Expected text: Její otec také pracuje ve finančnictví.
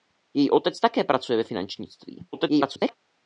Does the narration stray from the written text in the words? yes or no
yes